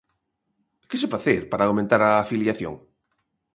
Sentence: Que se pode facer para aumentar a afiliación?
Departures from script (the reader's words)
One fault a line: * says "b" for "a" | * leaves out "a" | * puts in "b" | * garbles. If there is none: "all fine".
* leaves out "pode"